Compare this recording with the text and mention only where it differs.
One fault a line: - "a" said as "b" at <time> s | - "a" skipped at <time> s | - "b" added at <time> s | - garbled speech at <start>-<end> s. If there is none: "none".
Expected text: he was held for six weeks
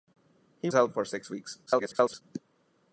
- "was" skipped at 0.7 s
- garbled speech at 1.7-2.2 s